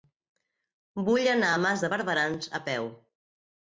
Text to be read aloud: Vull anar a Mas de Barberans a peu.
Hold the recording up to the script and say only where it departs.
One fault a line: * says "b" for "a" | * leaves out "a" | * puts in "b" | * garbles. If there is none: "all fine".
all fine